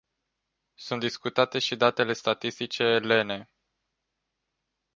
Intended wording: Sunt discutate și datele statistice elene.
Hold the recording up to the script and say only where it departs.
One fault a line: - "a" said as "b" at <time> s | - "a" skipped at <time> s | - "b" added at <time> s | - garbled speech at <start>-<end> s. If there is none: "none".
none